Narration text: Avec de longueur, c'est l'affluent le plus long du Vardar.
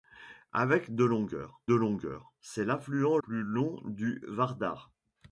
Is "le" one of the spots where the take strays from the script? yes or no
yes